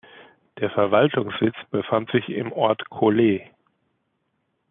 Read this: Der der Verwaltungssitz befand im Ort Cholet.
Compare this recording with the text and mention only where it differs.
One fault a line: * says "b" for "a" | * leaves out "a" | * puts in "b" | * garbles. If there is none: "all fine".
* leaves out "der"
* puts in "sich"